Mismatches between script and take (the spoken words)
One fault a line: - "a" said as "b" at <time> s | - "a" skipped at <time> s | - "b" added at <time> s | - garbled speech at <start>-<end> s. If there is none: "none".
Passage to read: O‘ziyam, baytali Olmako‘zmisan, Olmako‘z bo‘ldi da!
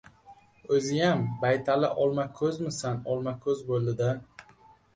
none